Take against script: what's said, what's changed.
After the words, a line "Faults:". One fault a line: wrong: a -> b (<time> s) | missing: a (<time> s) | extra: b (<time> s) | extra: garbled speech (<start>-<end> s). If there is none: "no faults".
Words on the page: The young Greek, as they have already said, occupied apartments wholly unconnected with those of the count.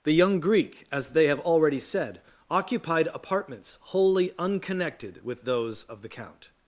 The young Greek, as they have already said, occupied apartments wholly unconnected with those of the count.
Faults:
no faults